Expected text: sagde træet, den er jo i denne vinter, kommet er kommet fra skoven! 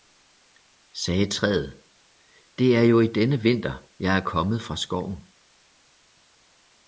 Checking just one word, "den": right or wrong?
wrong